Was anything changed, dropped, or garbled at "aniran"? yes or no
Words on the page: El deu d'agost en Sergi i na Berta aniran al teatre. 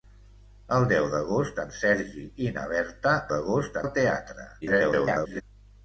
yes